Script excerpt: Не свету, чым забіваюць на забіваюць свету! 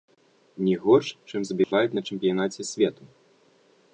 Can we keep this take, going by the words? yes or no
no